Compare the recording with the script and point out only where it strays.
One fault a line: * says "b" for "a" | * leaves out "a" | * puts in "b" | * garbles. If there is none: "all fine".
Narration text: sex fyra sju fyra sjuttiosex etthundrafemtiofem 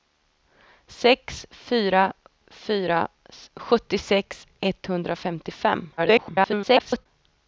* leaves out "sju"
* garbles